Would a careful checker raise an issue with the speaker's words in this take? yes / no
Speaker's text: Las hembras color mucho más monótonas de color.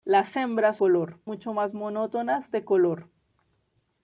no